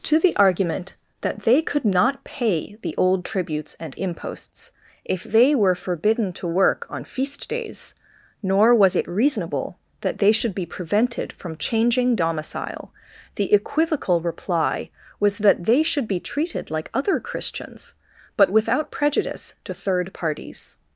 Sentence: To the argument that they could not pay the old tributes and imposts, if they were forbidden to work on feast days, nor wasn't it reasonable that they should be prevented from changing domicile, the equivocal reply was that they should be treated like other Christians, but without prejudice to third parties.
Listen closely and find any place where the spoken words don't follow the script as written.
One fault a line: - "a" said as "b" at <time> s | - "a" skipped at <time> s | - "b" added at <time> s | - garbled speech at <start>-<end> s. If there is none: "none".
- "wasn't" said as "was" at 8.7 s